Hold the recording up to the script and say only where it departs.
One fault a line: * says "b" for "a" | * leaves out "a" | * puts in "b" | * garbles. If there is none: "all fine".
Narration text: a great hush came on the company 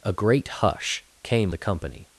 * leaves out "on"